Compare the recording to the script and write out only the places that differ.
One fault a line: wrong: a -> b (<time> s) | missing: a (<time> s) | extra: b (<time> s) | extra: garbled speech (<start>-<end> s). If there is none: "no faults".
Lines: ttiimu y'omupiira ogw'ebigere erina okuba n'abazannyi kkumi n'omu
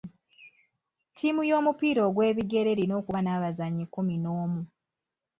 no faults